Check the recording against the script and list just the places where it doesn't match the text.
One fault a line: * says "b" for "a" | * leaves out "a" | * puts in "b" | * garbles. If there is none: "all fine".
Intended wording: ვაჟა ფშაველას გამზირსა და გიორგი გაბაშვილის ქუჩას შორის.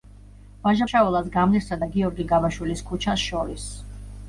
all fine